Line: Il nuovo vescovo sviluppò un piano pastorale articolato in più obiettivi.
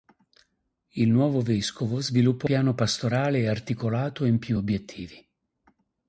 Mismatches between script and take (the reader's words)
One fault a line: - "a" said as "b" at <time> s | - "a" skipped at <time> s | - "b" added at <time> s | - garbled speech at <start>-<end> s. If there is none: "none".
- "un" skipped at 2.5 s